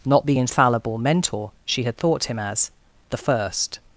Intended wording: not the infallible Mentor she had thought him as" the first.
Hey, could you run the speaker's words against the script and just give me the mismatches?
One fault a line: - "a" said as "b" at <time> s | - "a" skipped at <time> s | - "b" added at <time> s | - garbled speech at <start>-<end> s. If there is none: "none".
none